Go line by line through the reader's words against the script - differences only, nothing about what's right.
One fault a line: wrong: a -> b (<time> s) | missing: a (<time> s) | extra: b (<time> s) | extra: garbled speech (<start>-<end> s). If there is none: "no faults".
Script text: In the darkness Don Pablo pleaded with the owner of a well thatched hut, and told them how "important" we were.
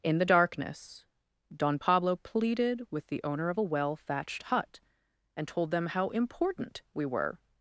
no faults